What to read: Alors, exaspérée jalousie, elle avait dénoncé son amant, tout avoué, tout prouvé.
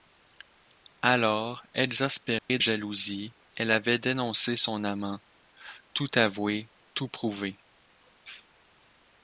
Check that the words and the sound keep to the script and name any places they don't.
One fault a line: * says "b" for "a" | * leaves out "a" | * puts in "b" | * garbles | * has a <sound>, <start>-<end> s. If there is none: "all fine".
* has a dropout, 2.4-2.5 s